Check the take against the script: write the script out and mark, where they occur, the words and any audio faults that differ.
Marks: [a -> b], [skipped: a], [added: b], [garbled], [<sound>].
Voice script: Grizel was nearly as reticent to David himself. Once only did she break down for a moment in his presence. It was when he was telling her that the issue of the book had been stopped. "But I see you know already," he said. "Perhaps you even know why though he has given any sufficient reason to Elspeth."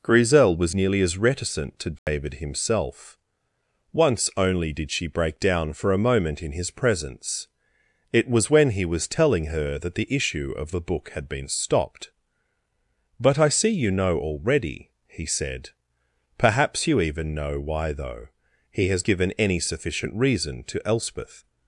Grizel was nearly as reticent to David [dropout] himself. Once only did she break down for a moment in his presence. It was when he was telling her that the issue of the book had been stopped. "But I see you know already," he said. "Perhaps you even know why though he has given any sufficient reason to Elspeth."